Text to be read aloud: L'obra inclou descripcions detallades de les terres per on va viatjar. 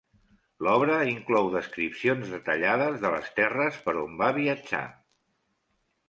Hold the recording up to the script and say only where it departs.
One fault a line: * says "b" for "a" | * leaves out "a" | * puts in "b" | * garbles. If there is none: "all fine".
all fine